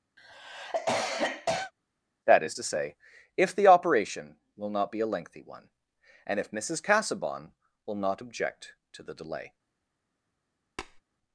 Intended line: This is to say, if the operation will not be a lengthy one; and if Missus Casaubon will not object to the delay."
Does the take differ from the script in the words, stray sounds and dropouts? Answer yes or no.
yes